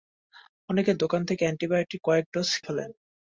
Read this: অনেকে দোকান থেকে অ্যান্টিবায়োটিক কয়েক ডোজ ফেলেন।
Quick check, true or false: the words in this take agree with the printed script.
true